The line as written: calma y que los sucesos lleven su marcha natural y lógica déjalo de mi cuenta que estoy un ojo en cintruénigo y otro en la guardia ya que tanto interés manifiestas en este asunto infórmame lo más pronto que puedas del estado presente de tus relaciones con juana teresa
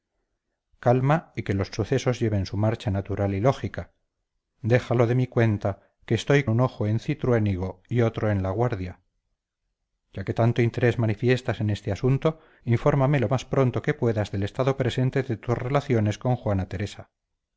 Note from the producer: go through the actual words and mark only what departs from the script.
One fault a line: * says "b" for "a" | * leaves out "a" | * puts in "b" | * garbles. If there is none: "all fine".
all fine